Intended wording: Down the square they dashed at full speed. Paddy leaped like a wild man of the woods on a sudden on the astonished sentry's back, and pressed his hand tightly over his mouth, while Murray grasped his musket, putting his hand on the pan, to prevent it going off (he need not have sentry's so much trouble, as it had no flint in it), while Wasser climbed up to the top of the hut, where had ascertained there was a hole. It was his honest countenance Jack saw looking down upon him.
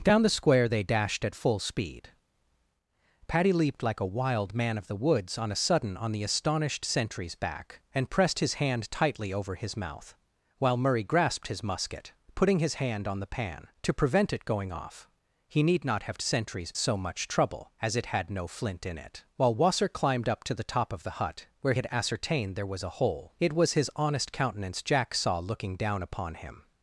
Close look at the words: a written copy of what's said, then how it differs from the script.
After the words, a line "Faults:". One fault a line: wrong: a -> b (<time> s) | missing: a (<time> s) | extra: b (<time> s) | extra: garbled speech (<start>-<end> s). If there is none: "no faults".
Down the square they dashed at full speed. Paddy leaped like a wild man of the woods on a sudden on the astonished sentry's back, and pressed his hand tightly over his mouth, while Murray grasped his musket, putting his hand on the pan, to prevent it going off (he need not have sentry's so much trouble, as it had no flint in it), while Wasser climbed up to the top of the hut, where had ascertained there was a hole. It was his honest countenance Jack saw looking down upon him.
Faults:
no faults